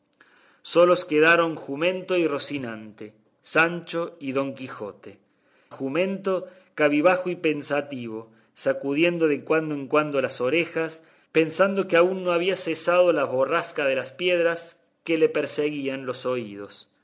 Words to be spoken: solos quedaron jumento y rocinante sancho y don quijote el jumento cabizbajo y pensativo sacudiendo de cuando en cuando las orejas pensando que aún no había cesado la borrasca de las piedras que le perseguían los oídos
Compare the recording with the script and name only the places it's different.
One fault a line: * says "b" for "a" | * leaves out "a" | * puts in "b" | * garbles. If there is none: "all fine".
* leaves out "el"